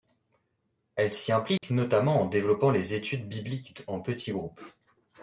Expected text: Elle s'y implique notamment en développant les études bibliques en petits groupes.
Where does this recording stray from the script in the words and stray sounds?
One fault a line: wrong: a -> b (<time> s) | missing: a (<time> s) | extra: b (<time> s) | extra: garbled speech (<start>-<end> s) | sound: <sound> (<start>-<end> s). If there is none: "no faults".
sound: dropout (1.6-1.6 s)